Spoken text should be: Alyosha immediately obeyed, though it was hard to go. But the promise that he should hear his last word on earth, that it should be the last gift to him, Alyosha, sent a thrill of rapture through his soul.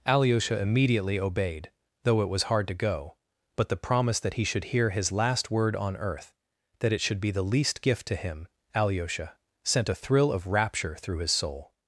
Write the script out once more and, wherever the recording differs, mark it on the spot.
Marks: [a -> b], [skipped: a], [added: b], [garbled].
Alyosha immediately obeyed, though it was hard to go. But the promise that he should hear his last word on earth, that it should be the [last -> least] gift to him, Alyosha, sent a thrill of rapture through his soul.